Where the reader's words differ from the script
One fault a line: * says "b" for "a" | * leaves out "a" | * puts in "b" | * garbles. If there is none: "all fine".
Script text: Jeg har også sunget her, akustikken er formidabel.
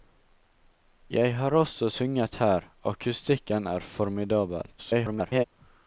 * garbles